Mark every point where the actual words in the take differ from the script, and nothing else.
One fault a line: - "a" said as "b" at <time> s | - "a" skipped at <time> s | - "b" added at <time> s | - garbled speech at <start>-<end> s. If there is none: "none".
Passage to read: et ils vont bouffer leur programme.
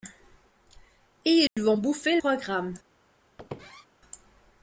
- "leur" skipped at 2.2 s